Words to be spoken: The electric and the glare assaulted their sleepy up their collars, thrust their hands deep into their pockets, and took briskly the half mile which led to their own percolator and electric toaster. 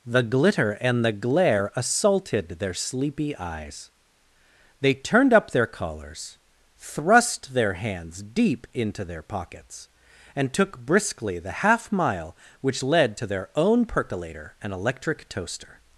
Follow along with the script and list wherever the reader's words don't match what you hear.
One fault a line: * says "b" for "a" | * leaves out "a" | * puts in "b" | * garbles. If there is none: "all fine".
* says "glitter" for "electric"
* puts in "eyes They turned"